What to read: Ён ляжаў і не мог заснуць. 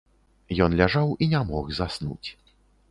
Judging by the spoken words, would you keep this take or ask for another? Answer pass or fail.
pass